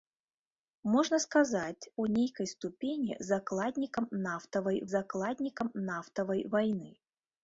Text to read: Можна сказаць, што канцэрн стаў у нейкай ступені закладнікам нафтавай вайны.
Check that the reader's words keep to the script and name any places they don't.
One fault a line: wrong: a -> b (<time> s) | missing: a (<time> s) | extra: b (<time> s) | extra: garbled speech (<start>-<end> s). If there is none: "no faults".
missing: што канцэрн стаў (1.8 s)
extra: закладнікам нафтавай (4.9 s)